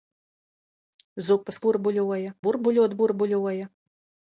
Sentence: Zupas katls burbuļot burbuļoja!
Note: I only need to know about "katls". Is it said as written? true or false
false